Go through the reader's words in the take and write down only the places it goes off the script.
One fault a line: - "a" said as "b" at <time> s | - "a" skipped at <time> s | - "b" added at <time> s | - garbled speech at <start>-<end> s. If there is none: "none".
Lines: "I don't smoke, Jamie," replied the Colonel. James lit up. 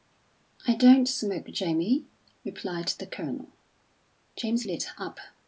none